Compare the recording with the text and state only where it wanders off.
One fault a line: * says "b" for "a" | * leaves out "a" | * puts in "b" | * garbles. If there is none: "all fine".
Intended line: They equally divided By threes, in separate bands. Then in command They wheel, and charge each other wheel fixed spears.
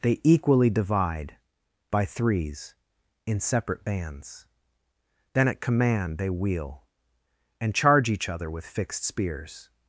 * says "divide" for "divided"
* says "at" for "in"
* says "with" for "wheel"